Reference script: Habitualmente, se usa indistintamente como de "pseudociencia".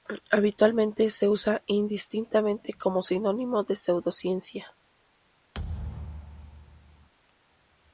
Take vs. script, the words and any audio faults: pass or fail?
fail